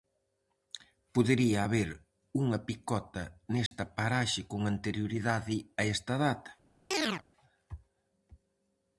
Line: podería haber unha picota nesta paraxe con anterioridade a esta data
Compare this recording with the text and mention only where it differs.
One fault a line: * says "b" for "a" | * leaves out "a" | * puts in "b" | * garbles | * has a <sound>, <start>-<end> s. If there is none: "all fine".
* has a dropout, 3.7-3.7 s
* has a chirp, 6.9-7.2 s